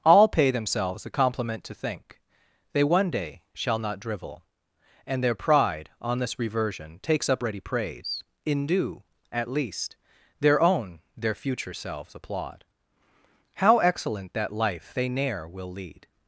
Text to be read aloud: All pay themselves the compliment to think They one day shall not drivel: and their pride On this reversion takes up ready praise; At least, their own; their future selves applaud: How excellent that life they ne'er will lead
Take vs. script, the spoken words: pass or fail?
fail